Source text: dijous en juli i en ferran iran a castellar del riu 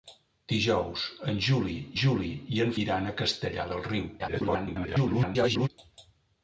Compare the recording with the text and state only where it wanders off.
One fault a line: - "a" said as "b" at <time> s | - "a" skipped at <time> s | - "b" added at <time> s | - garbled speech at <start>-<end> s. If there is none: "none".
- "juli" added at 2.0 s
- "ferran" skipped at 2.7 s
- garbled speech at 4.2-5.7 s